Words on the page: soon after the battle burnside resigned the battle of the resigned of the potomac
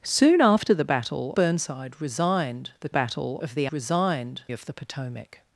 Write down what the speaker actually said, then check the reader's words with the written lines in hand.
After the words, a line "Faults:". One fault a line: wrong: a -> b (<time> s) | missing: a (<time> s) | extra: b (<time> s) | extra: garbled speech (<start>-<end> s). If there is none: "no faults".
soon after the battle burnside resigned the battle of the resigned of the potomac
Faults:
no faults